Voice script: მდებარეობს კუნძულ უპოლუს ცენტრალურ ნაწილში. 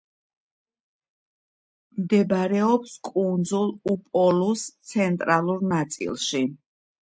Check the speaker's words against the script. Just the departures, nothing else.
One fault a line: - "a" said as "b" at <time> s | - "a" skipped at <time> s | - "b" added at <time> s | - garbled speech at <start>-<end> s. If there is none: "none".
none